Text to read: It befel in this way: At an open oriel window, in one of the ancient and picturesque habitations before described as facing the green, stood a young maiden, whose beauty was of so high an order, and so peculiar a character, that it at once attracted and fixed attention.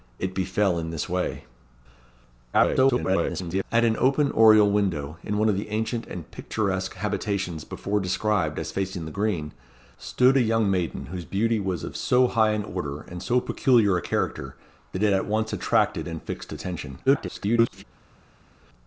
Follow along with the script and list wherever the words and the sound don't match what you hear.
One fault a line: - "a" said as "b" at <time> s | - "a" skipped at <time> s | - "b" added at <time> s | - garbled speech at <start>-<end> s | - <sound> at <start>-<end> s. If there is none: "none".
- garbled speech at 2.5-3.6 s
- garbled speech at 17.1-17.8 s